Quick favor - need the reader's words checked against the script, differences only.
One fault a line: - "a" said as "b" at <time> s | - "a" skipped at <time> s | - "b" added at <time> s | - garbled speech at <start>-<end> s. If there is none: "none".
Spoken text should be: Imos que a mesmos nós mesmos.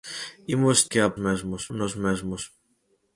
none